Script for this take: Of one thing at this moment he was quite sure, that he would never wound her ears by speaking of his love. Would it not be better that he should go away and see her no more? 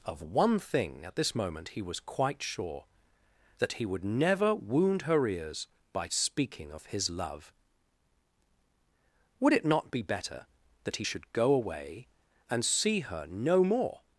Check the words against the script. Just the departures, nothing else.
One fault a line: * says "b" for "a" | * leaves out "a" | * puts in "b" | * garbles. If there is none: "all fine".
all fine